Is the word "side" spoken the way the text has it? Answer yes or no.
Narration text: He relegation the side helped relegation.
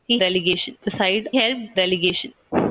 yes